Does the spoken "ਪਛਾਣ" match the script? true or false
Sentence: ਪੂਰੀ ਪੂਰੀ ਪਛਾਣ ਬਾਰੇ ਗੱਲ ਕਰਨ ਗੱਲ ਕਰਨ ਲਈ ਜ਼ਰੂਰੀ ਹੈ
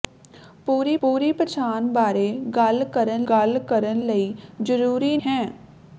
true